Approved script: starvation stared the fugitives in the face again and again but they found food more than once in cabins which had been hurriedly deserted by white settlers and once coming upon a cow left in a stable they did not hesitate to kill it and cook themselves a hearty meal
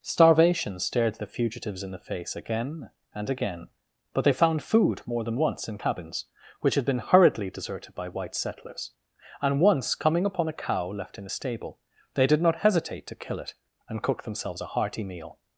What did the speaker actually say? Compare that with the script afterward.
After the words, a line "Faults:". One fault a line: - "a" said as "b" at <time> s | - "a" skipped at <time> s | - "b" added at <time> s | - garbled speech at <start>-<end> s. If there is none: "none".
starvation stared the fugitives in the face again and again but they found food more than once in cabins which had been hurriedly deserted by white settlers and once coming upon a cow left in a stable they did not hesitate to kill it and cook themselves a hearty meal
Faults:
none